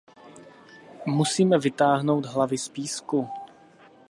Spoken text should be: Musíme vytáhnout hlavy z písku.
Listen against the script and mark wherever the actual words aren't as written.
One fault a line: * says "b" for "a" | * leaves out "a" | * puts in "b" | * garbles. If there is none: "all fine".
all fine